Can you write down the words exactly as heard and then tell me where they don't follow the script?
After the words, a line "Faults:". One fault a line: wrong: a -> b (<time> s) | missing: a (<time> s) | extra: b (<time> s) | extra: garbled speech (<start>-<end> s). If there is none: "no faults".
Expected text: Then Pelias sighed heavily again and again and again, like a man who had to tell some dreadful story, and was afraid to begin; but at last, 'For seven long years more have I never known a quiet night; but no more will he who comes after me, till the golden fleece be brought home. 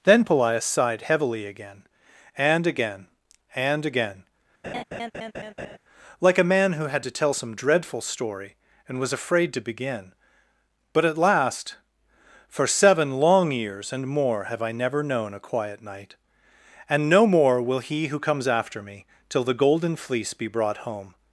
Then Pelias sighed heavily again and again and again, like a man who had to tell some dreadful story, and was afraid to begin; but at last, 'For seven long years and more have I never known a quiet night; and no more will he who comes after me, till the golden fleece be brought home.
Faults:
extra: and (13.9 s)
wrong: but -> and (16.9 s)